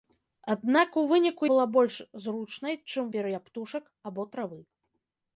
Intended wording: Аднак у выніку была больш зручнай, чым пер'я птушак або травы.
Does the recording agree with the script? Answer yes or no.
yes